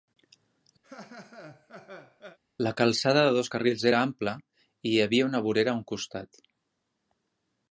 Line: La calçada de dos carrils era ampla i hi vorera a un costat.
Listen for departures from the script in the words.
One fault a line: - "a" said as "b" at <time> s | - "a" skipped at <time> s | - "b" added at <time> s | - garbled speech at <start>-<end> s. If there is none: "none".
- "havia una" added at 5.1 s